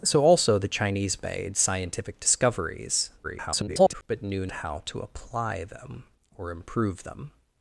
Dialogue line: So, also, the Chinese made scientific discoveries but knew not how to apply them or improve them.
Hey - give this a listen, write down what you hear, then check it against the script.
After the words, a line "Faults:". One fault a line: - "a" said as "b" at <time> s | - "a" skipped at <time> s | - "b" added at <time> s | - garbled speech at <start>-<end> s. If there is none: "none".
So, also, the Chinese made scientific discoveries [garbled] but knew how to apply them or improve them.
Faults:
- garbled speech at 3.2-4.0 s
- "not" skipped at 4.5 s